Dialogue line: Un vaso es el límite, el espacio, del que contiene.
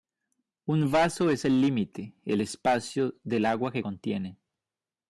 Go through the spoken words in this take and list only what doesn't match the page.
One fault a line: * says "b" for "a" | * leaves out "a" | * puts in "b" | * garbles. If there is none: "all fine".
* puts in "agua"